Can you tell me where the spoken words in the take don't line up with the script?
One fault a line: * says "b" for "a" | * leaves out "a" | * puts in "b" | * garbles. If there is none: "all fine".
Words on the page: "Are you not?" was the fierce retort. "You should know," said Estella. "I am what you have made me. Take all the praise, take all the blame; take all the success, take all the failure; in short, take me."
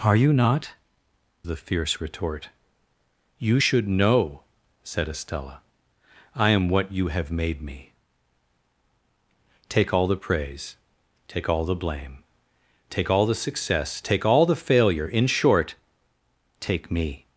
* leaves out "was"